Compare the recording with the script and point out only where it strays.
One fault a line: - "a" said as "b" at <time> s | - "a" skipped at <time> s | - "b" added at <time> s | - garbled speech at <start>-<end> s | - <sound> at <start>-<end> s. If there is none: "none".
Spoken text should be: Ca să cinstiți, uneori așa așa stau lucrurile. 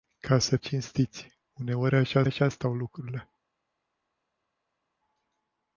none